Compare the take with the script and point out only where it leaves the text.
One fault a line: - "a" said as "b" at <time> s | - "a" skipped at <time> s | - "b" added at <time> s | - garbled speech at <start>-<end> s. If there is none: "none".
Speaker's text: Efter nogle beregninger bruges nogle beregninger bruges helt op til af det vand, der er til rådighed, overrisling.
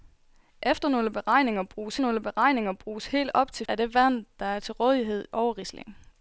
none